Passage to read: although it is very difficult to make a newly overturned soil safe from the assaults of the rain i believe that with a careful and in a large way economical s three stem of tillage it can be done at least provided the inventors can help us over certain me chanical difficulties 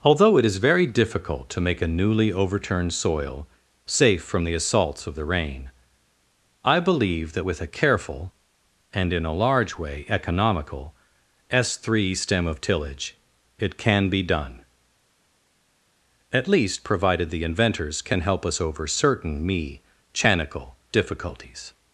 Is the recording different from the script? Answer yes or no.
no